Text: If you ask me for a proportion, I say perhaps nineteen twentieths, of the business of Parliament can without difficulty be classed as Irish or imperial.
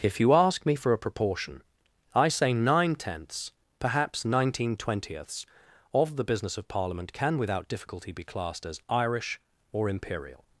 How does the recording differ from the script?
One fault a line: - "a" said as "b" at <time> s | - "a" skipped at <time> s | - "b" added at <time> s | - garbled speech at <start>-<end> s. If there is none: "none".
- "nine tenths" added at 2.5 s